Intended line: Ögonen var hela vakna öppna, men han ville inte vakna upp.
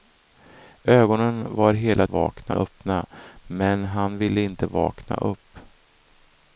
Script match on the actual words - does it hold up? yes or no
yes